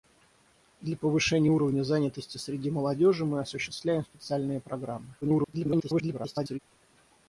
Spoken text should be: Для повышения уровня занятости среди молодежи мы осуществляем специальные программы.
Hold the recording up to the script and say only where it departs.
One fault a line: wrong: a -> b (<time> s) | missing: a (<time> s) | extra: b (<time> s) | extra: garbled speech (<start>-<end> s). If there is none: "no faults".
extra: garbled speech (5.2-6.6 s)